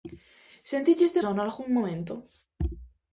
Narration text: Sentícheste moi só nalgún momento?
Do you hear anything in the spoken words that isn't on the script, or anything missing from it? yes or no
yes